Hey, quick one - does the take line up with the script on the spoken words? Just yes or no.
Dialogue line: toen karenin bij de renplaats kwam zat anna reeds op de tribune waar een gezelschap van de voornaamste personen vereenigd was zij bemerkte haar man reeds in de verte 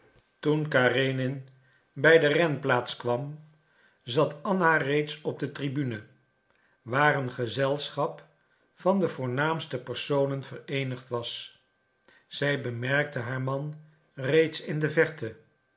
yes